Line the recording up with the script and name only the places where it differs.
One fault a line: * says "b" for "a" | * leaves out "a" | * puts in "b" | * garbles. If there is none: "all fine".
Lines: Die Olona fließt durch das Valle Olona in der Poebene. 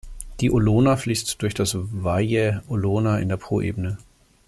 all fine